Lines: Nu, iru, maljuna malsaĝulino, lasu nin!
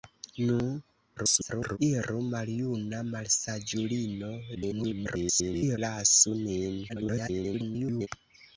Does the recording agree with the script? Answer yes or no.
no